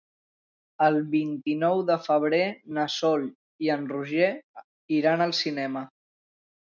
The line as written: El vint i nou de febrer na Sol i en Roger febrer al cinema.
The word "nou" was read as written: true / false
true